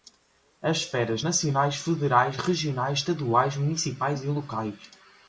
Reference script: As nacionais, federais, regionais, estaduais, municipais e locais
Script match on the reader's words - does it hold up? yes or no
no